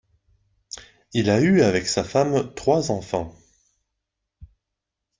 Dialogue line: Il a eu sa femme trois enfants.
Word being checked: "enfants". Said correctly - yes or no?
yes